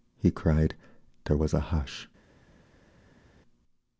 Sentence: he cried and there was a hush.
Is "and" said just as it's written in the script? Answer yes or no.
no